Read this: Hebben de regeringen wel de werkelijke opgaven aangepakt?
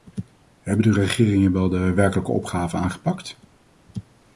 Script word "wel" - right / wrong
right